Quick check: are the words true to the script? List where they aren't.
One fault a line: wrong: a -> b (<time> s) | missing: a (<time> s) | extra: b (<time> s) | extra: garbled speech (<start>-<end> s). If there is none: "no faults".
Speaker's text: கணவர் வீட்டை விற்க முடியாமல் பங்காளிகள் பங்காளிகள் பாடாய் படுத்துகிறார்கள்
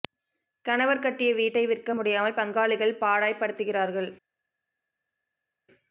extra: கட்டிய (1.0 s)
missing: பங்காளிகள் (3.0 s)